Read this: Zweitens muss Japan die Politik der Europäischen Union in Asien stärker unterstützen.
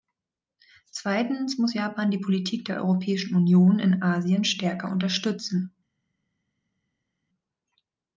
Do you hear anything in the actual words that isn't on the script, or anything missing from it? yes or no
no